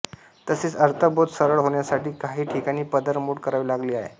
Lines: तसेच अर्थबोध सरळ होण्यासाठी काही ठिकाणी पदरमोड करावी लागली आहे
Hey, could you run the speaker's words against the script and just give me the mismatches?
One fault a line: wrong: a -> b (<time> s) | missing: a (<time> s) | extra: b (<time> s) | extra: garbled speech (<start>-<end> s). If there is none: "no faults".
no faults